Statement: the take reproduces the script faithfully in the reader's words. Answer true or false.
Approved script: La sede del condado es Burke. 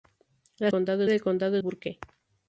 false